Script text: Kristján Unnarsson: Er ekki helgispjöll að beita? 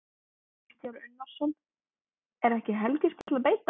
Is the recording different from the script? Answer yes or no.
no